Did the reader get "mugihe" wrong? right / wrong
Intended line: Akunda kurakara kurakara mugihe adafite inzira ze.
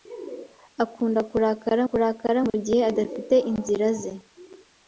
right